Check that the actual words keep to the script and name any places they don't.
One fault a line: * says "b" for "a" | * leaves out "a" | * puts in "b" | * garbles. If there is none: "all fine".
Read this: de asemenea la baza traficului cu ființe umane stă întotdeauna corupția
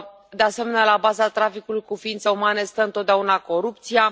all fine